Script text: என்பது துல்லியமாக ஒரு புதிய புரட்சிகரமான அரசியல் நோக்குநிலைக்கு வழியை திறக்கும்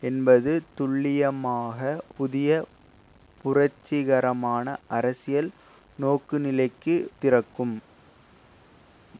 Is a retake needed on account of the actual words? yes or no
yes